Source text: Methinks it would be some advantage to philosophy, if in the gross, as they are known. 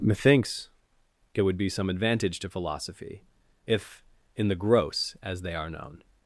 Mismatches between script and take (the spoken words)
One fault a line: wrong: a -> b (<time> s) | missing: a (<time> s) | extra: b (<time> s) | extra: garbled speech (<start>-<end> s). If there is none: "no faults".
no faults